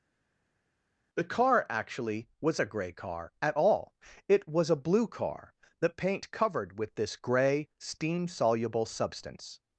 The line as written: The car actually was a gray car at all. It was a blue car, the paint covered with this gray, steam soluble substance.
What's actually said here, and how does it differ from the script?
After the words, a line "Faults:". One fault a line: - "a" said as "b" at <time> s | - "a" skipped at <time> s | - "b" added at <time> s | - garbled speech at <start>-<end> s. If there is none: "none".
The car actually was a gray car at all. It was a blue car, the paint covered with this gray, steam soluble substance.
Faults:
none